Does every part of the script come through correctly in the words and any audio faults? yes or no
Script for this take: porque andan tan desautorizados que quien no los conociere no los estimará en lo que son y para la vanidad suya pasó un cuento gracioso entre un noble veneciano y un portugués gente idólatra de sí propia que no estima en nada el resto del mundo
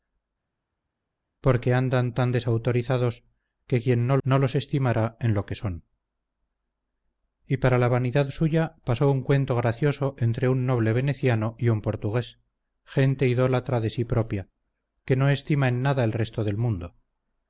no